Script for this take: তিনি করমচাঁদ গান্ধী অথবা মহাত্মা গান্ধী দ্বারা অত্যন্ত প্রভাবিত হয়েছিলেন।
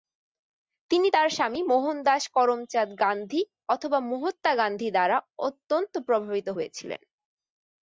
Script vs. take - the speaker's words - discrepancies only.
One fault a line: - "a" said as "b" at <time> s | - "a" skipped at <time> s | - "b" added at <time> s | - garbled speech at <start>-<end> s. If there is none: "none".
- "তার স্বামী মোহনদাস" added at 1.1 s